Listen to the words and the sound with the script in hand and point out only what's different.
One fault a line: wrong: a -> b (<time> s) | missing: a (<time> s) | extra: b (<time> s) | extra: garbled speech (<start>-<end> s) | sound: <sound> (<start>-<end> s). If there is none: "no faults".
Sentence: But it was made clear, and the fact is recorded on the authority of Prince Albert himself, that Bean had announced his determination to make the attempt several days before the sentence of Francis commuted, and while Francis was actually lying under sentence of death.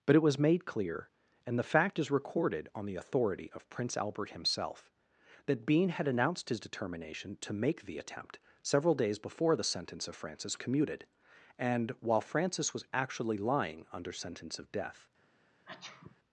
sound: sneeze (15.6-16.2 s)